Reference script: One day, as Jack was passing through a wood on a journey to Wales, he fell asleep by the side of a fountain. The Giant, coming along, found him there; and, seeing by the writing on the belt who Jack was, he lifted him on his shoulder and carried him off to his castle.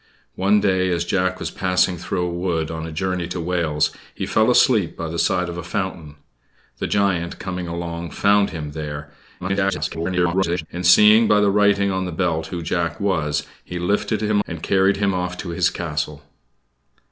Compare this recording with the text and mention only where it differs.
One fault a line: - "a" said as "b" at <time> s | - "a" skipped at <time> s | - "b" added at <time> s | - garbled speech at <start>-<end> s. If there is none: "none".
- garbled speech at 9.4-10.7 s
- "on his shoulder" skipped at 14.4 s